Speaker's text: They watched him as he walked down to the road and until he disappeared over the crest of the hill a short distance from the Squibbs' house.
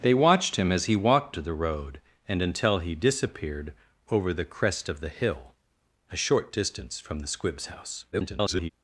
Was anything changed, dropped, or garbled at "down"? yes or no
yes